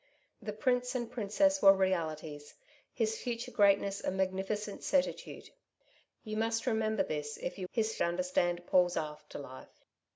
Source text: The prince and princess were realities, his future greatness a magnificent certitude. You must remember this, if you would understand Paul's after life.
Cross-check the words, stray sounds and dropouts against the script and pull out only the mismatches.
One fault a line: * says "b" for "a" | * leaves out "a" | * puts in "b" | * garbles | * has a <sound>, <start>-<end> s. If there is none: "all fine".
* says "his" for "would"